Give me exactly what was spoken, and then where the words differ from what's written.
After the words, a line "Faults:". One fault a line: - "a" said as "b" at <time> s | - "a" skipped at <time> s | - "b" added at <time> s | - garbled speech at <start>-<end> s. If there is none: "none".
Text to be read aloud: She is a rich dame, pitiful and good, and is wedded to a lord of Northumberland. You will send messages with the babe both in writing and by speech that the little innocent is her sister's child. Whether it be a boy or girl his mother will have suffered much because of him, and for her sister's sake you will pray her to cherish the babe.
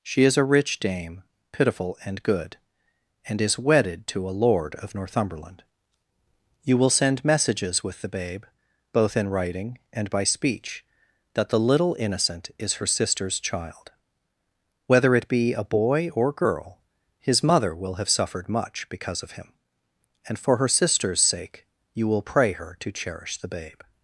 She is a rich dame, pitiful and good, and is wedded to a lord of Northumberland. You will send messages with the babe both in writing and by speech that the little innocent is her sister's child. Whether it be a boy or girl his mother will have suffered much because of him, and for her sister's sake you will pray her to cherish the babe.
Faults:
none